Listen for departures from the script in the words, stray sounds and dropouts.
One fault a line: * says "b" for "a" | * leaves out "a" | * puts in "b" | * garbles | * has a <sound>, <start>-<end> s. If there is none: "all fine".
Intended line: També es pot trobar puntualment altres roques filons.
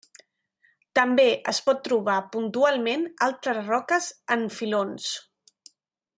* puts in "en"